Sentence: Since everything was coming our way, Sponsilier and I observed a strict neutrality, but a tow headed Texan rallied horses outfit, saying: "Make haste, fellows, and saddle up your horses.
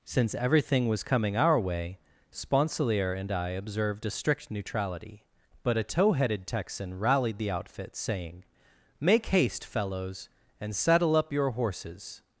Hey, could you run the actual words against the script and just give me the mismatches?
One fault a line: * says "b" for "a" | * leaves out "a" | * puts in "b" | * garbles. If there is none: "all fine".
* says "the" for "horses"